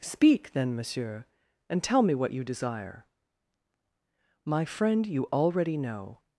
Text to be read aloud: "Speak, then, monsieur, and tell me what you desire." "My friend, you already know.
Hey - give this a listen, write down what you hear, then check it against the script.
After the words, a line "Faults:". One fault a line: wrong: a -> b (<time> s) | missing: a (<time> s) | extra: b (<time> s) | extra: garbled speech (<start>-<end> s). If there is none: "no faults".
"Speak, then, monsieur, and tell me what you desire." "My friend, you already know.
Faults:
no faults